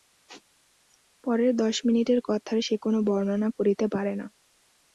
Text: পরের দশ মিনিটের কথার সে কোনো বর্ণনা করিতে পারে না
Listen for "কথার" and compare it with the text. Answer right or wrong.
right